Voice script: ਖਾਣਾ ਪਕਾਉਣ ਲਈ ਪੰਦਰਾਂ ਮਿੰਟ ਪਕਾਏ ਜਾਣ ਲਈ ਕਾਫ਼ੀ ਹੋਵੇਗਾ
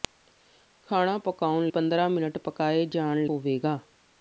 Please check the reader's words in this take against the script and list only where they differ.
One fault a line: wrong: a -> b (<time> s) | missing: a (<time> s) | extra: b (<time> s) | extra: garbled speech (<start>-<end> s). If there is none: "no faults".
missing: ਲਈ (1.7 s)
missing: ਲਈ ਕਾਫ਼ੀ (3.2 s)